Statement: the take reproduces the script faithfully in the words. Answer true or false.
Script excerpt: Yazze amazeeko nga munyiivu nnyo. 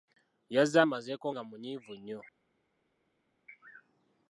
true